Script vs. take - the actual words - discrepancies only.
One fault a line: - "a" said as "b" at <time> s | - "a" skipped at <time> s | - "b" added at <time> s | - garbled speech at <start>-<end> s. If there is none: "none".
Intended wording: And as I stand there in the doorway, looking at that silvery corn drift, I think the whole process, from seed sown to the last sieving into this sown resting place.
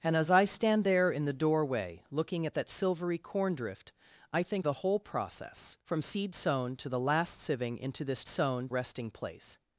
none